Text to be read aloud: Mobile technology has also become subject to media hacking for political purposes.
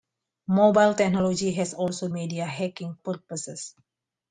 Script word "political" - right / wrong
wrong